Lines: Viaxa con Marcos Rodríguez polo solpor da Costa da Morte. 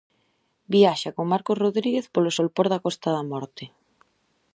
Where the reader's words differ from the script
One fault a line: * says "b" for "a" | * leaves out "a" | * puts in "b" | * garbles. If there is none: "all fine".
all fine